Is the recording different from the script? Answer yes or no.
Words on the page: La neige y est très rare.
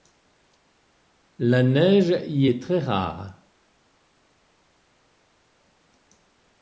no